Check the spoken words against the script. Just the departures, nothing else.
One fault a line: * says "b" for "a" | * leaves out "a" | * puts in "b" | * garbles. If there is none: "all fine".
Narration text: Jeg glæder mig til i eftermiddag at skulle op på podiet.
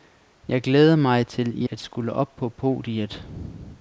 * leaves out "eftermiddag"